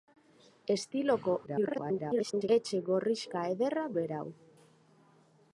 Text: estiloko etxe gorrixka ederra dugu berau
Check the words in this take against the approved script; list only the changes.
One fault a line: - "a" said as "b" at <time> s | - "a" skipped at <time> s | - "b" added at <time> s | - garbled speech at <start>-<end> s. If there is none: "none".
- garbled speech at 1.5-2.5 s
- "dugu" skipped at 3.8 s